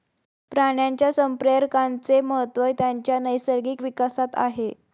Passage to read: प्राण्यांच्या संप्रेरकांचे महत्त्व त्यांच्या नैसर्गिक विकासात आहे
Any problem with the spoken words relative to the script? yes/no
no